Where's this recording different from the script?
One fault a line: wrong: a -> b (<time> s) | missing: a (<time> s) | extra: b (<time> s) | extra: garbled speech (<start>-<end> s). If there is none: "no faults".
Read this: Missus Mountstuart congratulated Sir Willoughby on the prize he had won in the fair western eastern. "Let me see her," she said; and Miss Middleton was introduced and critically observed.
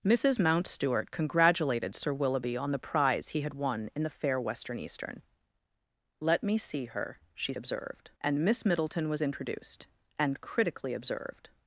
wrong: said -> observed (7.5 s)